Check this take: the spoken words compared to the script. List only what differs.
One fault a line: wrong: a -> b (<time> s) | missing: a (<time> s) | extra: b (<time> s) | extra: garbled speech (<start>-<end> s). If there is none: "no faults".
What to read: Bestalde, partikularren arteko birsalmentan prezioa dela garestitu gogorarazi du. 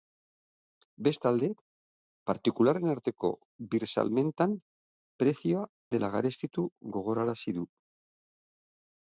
no faults